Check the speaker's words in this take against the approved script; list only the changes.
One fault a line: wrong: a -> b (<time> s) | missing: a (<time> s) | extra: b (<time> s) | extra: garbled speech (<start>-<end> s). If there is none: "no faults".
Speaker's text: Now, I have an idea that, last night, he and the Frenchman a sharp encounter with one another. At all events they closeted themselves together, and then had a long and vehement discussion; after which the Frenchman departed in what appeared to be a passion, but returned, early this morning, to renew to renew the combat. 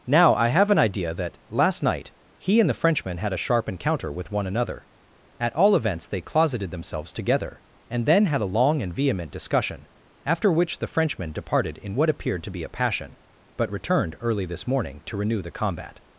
extra: had (3.2 s)
missing: to renew (15.4 s)